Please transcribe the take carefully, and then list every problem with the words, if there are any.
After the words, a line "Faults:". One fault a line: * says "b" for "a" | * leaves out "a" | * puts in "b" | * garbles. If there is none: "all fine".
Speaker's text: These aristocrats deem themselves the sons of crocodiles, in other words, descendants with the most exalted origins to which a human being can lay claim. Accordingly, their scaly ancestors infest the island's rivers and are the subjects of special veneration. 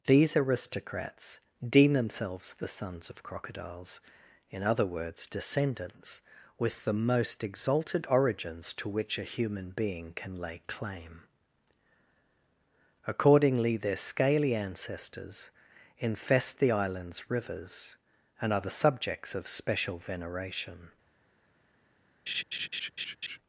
These aristocrats deem themselves the sons of crocodiles, in other words, descendants with the most exalted origins to which a human being can lay claim. Accordingly, their scaly ancestors infest the island's rivers and are the subjects of special veneration.
Faults:
all fine